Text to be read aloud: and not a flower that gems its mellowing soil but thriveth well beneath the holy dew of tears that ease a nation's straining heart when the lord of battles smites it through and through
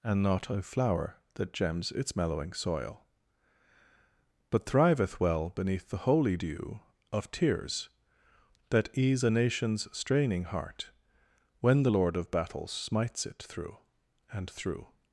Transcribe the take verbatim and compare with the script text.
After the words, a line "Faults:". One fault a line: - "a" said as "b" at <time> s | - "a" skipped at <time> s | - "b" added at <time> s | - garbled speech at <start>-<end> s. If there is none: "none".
and not a flower that gems its mellowing soil but thriveth well beneath the holy dew of tears that ease a nation's straining heart when the lord of battles smites it through and through
Faults:
none